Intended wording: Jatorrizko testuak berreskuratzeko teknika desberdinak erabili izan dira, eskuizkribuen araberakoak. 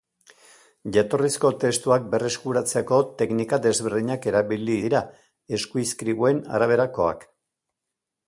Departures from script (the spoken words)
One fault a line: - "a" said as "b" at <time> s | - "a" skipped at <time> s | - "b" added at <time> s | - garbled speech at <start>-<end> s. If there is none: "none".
- "izan" skipped at 4.8 s